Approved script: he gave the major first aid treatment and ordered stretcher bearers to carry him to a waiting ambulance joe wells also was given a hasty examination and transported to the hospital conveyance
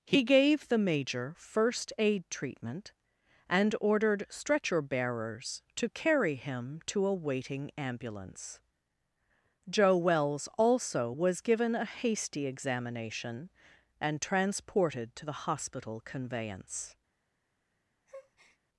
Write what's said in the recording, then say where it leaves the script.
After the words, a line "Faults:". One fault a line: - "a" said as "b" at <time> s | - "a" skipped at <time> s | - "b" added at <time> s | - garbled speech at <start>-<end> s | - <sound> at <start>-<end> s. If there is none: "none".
he gave the major first aid treatment and ordered stretcher bearers to carry him to a waiting ambulance joe wells also was given a hasty examination and transported to the hospital conveyance
Faults:
- breath at 18.1-18.6 s